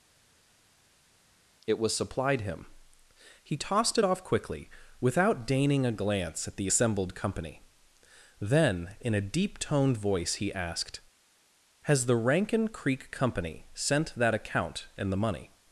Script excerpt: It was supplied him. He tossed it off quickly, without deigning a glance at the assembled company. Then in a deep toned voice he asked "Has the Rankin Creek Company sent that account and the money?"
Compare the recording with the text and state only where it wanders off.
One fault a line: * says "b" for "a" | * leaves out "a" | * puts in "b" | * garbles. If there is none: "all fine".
all fine